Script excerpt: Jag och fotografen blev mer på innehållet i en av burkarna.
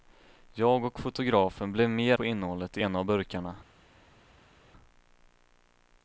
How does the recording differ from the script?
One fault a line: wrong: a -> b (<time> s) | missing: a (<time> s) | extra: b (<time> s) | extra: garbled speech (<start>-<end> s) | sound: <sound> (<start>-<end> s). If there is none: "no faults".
no faults